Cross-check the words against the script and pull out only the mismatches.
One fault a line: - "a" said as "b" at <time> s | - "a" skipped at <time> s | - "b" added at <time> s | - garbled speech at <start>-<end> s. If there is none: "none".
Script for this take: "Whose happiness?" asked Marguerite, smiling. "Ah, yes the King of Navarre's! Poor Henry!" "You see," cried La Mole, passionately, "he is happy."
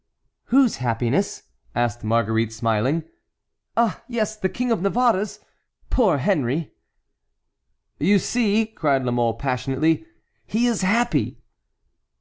none